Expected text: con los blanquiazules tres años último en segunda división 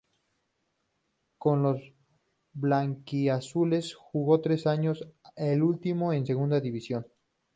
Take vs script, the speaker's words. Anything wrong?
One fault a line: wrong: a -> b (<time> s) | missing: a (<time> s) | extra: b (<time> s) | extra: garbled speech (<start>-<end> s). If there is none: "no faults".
extra: jugó (3.9 s)
extra: el (5.3 s)